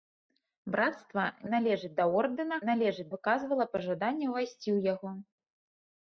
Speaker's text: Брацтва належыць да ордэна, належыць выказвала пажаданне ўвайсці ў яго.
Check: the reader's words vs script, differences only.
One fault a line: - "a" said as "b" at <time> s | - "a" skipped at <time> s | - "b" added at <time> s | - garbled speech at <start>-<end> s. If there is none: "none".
none